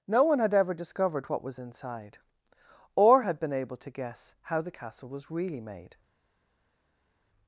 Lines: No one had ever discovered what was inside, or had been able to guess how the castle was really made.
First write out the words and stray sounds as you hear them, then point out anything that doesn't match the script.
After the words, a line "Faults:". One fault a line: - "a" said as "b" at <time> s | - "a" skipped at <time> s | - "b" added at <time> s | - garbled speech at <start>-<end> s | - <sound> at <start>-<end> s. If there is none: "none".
No one had ever discovered what was inside, or had been able to guess how the castle was really made.
Faults:
none